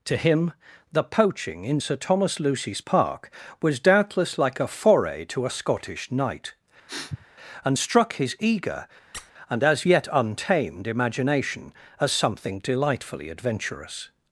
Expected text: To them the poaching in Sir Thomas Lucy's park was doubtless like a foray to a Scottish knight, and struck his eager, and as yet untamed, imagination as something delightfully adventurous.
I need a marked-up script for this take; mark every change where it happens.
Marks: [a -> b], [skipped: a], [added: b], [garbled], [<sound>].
To [them -> him] the poaching in Sir Thomas Lucy's park was doubtless like a foray to a Scottish knight, [sniff] and struck his eager, [squeak] and as yet untamed, imagination as something delightfully adventurous.